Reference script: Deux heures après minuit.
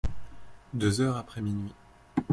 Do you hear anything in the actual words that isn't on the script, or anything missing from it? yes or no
no